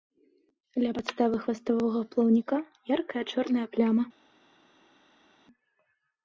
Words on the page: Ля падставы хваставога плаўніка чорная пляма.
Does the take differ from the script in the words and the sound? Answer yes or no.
yes